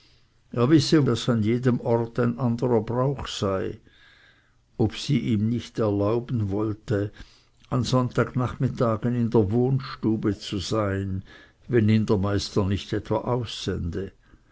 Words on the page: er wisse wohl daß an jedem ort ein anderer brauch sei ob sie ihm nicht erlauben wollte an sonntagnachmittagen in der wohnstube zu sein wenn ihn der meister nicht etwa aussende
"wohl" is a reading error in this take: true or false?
true